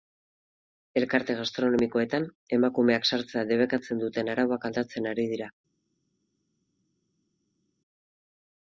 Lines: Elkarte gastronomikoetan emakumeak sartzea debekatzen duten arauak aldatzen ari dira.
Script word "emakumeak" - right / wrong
right